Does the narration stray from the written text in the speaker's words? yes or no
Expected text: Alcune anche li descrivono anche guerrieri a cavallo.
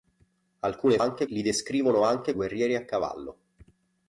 no